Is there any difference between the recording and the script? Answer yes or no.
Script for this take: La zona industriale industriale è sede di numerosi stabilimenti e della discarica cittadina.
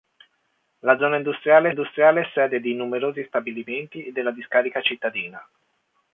no